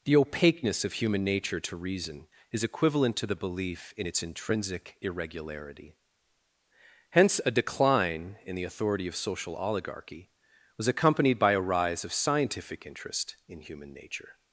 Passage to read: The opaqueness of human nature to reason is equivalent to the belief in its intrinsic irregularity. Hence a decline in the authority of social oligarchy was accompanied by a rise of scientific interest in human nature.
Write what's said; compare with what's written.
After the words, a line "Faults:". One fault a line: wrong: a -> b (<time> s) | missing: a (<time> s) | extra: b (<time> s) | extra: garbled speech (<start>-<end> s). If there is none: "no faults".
The opaqueness of human nature to reason is equivalent to the belief in its intrinsic irregularity. Hence a decline in the authority of social oligarchy was accompanied by a rise of scientific interest in human nature.
Faults:
no faults